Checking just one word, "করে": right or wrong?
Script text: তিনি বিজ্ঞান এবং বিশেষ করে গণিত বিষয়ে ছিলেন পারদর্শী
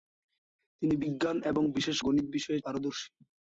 wrong